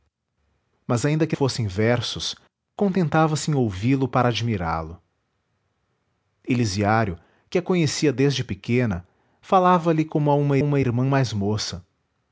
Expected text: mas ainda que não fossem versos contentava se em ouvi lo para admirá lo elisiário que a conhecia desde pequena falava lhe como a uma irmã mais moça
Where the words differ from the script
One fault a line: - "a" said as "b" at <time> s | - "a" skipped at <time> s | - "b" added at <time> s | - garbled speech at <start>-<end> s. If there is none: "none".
- "não" skipped at 1.4 s
- "uma" added at 10.6 s